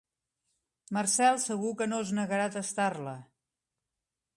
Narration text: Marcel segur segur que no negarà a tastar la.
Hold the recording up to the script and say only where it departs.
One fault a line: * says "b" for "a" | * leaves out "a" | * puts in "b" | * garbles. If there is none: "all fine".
* leaves out "segur"
* puts in "es"